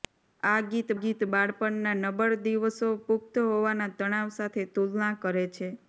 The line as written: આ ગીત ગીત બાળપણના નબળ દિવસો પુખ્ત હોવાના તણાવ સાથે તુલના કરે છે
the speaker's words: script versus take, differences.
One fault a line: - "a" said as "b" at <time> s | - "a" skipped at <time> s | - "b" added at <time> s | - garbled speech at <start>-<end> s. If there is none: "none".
none